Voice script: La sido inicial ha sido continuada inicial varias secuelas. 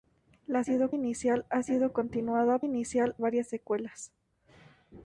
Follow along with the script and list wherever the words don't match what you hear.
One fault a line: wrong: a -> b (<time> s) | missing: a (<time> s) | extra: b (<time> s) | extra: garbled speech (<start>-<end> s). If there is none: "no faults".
no faults